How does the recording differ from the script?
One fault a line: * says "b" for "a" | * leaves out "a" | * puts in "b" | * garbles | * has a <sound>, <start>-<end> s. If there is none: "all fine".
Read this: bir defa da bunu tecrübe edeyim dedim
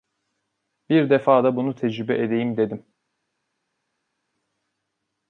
all fine